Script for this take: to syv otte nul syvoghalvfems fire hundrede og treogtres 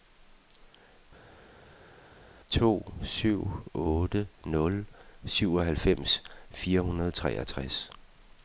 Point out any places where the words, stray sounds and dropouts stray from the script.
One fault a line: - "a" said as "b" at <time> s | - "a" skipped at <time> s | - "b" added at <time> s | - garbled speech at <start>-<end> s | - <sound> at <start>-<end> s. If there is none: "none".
none